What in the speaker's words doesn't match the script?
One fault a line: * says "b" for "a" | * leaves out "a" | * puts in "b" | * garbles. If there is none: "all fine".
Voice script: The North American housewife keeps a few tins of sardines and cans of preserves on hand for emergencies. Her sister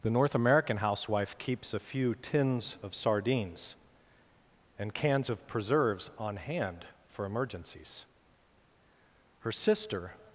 all fine